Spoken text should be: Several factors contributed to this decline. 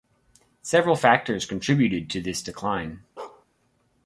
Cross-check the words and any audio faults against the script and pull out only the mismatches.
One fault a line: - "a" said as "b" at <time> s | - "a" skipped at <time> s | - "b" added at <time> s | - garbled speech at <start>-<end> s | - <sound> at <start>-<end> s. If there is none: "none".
- bark at 3.2-3.5 s